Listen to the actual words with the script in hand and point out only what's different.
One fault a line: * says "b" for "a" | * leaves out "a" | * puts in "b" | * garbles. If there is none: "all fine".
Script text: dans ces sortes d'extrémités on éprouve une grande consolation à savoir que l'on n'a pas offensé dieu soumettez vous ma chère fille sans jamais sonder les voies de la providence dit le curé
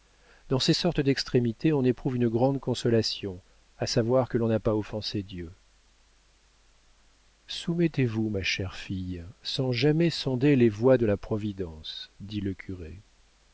all fine